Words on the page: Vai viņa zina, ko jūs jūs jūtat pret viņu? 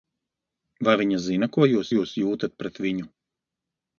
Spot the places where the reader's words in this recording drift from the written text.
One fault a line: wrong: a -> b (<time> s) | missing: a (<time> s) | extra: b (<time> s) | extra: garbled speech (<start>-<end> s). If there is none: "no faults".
no faults